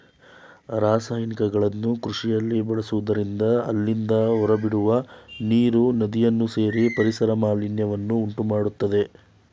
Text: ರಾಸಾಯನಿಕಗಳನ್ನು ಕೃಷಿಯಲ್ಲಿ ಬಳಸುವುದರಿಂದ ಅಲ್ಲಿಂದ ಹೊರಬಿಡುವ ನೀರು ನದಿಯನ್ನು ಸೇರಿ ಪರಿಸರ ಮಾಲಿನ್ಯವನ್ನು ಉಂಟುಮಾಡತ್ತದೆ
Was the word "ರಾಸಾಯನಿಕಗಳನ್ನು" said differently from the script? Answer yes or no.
no